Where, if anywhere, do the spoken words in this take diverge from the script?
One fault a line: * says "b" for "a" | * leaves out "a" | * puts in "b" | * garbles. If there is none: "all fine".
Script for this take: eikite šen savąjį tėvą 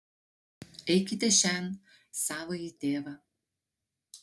all fine